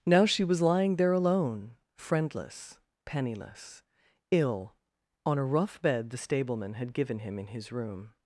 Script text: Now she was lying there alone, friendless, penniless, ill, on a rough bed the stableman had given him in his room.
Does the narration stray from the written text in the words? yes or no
no